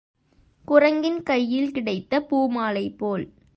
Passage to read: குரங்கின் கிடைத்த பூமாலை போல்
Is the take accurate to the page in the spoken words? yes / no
no